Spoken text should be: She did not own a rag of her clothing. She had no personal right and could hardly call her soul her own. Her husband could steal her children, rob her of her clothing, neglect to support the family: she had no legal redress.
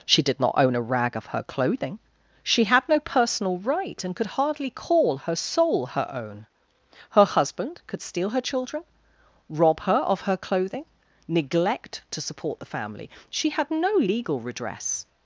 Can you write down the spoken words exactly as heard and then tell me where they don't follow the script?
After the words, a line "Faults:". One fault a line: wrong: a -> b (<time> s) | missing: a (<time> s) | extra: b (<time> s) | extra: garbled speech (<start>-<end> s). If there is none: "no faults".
She did not own a rag of her clothing. She had no personal right and could hardly call her soul her own. Her husband could steal her children, rob her of her clothing, neglect to support the family: she had no legal redress.
Faults:
no faults